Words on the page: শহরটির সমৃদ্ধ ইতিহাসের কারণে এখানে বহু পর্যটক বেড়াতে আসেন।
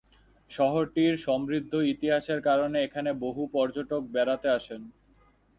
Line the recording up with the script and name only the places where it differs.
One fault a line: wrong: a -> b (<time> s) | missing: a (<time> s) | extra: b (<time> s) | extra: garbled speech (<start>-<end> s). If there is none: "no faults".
no faults